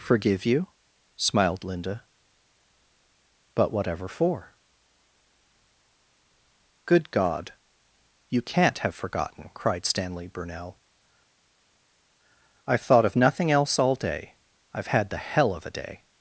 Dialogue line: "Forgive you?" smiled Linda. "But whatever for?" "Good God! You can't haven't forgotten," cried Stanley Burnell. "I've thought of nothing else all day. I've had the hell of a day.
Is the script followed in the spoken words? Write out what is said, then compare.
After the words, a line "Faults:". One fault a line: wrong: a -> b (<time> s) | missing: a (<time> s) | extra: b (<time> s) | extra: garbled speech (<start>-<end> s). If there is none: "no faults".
"Forgive you?" smiled Linda. "But whatever for?" "Good God! You can't have forgotten," cried Stanley Burnell. "I've thought of nothing else all day. I've had the hell of a day.
Faults:
wrong: haven't -> have (8.8 s)